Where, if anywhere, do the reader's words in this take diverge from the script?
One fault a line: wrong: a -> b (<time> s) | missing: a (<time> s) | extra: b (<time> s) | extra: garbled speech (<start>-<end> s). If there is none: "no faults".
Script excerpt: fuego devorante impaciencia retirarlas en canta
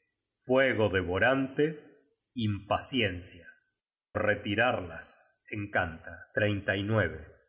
no faults